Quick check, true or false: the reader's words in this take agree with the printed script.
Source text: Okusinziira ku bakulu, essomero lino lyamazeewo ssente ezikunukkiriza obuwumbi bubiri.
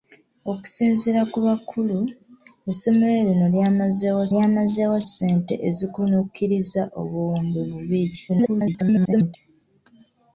false